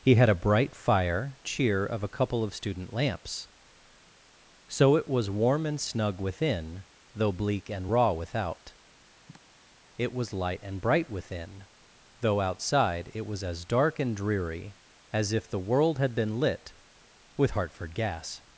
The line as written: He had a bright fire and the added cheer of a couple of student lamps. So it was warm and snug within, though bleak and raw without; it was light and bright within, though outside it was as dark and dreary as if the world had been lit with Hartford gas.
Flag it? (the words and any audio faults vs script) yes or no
yes